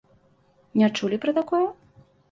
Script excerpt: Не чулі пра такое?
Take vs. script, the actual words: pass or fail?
pass